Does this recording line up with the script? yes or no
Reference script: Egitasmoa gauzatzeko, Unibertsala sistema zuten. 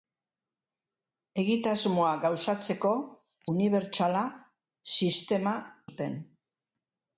yes